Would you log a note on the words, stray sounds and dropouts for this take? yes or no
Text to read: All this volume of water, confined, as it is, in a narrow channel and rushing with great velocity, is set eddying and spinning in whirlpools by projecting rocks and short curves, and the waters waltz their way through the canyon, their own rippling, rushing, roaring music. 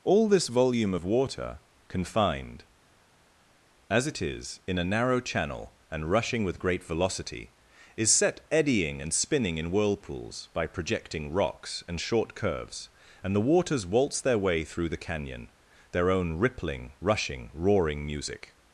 no